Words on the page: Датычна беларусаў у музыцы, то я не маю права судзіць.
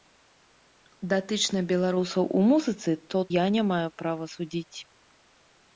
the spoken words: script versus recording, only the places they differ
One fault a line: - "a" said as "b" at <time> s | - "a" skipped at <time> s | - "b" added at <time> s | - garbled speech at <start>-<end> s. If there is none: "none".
none